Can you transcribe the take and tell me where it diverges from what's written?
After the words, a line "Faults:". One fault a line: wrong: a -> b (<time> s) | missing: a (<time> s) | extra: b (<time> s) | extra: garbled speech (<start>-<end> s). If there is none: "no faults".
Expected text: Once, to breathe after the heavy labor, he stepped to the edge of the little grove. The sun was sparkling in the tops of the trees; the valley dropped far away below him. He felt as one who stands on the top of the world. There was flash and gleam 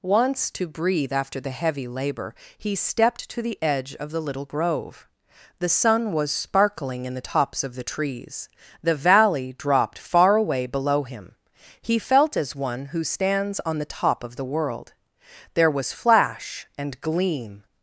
Once, to breathe after the heavy labor, he stepped to the edge of the little grove. The sun was sparkling in the tops of the trees; the valley dropped far away below him. He felt as one who stands on the top of the world. There was flash and gleam
Faults:
no faults